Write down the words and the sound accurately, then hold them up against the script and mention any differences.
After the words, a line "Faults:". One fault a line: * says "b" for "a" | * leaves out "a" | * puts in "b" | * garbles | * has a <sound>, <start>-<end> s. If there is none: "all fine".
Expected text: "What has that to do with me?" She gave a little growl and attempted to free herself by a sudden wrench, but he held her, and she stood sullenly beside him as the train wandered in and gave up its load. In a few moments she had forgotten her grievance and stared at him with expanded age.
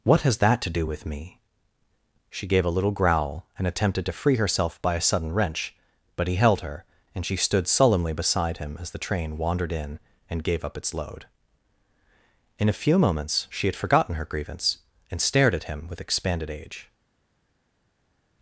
"What has that to do with me?" She gave a little growl and attempted to free herself by a sudden wrench, but he held her, and she stood sullenly beside him as the train wandered in and gave up its load. In a few moments she had forgotten her grievance and stared at him with expanded age.
Faults:
all fine